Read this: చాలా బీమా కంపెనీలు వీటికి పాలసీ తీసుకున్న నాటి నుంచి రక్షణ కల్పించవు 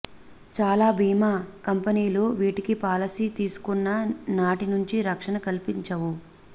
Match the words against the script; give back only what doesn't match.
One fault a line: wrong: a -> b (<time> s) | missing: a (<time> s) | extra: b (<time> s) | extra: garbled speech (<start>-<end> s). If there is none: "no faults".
no faults